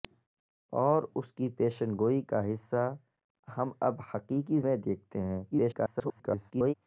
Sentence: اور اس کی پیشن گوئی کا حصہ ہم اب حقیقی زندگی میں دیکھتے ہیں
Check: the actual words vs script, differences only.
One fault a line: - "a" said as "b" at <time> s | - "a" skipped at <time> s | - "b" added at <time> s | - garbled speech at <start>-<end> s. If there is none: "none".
- "زندگی" skipped at 4.6 s
- garbled speech at 5.5-6.7 s